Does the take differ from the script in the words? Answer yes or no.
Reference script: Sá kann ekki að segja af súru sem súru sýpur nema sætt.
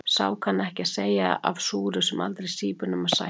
yes